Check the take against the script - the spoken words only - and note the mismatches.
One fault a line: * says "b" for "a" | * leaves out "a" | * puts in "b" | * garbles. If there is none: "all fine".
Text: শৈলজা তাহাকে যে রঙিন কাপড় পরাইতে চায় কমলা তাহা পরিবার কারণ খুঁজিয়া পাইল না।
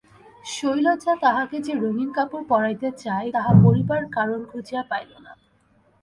* leaves out "কমলা"